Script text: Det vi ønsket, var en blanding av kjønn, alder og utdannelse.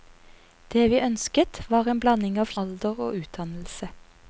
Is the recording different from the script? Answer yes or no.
yes